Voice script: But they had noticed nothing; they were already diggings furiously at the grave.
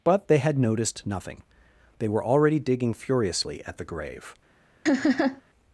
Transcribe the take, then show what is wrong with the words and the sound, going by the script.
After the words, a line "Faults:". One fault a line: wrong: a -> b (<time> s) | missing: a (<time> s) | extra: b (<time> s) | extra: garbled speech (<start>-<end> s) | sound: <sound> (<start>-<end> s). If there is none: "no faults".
But they had noticed nothing; they were already digging furiously at the grave.
Faults:
wrong: diggings -> digging (2.6 s)
sound: laugh (4.9-5.4 s)